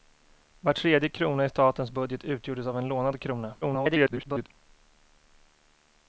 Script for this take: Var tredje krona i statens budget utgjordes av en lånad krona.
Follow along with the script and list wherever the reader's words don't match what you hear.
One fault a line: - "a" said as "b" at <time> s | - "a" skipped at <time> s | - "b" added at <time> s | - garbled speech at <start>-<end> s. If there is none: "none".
- garbled speech at 3.6-4.5 s